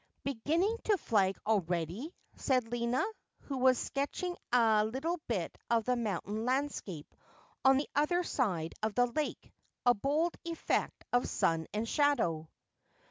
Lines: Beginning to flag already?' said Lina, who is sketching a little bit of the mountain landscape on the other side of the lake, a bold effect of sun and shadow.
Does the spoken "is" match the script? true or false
false